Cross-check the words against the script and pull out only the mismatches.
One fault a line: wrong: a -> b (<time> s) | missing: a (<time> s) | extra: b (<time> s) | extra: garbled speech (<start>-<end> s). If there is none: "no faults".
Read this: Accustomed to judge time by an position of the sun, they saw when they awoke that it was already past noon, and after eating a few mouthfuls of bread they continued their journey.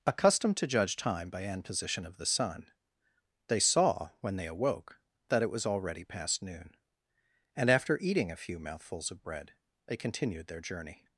no faults